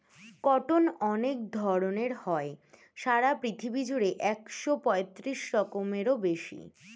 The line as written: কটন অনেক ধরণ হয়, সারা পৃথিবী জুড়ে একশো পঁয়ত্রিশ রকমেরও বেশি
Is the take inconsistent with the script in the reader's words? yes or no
no